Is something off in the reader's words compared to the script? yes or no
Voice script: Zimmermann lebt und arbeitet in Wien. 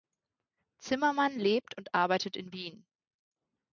no